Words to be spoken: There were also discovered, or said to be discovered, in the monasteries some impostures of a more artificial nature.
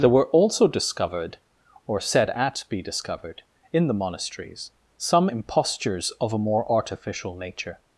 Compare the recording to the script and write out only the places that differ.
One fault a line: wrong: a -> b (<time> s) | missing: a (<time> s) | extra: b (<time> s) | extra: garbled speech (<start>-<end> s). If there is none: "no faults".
wrong: to -> at (2.3 s)